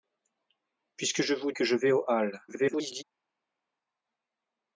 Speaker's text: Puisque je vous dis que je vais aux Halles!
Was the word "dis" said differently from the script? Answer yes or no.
yes